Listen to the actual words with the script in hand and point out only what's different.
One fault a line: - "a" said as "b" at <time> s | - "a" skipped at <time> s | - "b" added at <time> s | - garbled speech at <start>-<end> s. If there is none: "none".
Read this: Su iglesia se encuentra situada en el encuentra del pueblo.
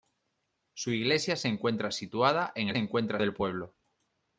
none